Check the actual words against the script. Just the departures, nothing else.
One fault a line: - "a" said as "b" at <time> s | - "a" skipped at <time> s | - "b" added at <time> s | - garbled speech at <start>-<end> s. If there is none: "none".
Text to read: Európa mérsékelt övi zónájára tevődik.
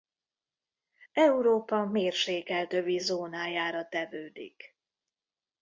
none